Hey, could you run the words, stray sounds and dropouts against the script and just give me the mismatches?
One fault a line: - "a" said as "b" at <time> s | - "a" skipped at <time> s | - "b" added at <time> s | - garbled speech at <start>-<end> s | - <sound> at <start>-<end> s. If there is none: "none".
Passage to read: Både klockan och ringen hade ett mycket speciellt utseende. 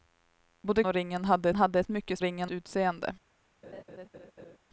- "klockan" skipped at 0.8 s
- "hade" added at 1.5 s
- "speciellt" said as "ringen" at 2.2 s
- laugh at 3.6-4.6 s